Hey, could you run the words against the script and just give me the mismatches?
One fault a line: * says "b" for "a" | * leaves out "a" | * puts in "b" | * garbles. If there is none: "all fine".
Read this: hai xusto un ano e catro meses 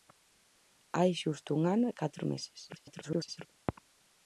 * garbles